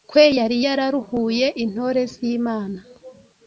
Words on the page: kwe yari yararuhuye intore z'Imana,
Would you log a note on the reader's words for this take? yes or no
no